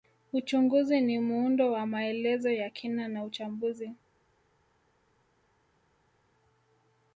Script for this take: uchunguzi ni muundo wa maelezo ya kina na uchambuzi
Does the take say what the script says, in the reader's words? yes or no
yes